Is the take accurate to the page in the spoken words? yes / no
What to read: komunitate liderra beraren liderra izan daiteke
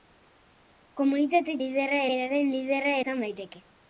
yes